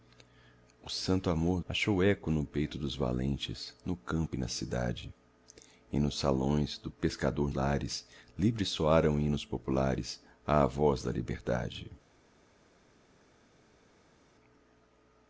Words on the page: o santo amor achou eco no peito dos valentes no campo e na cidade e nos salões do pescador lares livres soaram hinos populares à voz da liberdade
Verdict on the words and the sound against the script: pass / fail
pass